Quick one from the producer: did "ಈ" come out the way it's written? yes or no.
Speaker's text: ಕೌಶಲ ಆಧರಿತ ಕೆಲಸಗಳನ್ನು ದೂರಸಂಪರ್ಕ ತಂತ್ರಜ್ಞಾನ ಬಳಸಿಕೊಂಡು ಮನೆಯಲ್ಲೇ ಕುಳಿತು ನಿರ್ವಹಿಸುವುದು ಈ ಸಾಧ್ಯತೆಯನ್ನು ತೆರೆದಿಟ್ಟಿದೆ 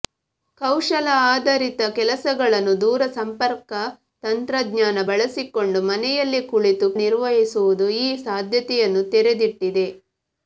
yes